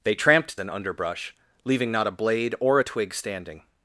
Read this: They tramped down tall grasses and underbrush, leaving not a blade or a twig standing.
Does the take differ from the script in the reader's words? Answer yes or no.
yes